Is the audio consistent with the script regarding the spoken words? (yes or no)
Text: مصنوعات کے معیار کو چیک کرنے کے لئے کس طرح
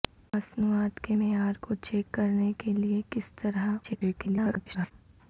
no